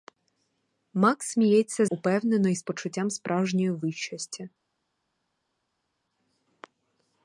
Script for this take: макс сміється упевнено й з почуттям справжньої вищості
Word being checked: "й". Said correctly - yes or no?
yes